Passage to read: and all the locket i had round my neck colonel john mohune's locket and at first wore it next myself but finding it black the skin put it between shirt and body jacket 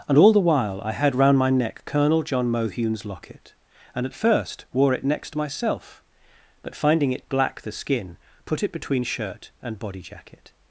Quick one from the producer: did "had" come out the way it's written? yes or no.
yes